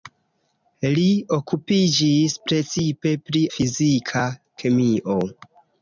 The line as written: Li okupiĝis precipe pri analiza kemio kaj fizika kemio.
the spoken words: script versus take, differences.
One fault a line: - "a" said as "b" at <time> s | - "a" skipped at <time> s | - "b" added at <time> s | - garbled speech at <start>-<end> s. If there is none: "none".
- "analiza kemio kaj" skipped at 3.4 s